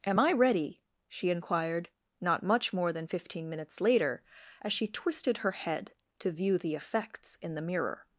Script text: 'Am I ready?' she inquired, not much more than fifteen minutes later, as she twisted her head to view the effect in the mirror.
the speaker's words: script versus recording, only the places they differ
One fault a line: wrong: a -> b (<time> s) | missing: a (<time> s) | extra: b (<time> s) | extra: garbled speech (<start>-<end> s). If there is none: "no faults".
wrong: effect -> effects (6.7 s)